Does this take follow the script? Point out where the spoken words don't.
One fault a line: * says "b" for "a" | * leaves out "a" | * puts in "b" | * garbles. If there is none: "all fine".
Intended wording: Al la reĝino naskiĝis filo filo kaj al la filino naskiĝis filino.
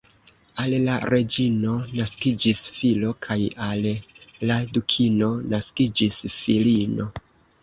* leaves out "filo"
* says "dukino" for "filino"